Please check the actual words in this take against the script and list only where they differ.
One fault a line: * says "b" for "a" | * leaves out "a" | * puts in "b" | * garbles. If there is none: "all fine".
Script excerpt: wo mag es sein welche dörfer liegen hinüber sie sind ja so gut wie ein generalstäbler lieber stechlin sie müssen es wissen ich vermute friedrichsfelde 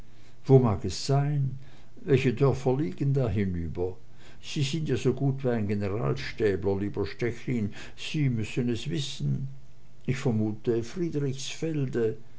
* puts in "da"